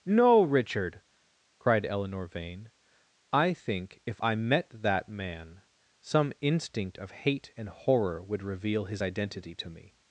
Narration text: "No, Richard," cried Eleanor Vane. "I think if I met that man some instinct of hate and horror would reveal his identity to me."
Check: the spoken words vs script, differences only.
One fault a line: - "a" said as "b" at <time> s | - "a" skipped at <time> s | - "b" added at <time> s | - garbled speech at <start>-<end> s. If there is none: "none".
none